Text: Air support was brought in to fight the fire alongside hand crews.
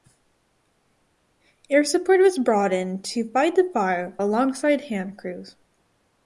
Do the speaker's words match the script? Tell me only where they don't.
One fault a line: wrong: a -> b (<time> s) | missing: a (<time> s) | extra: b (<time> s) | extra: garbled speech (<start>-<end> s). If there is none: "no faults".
no faults